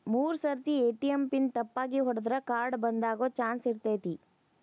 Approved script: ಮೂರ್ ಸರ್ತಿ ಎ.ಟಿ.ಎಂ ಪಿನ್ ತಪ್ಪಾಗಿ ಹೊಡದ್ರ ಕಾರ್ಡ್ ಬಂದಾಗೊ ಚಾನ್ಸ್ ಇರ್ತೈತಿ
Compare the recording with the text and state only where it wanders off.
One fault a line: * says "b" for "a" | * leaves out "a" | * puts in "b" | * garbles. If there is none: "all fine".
all fine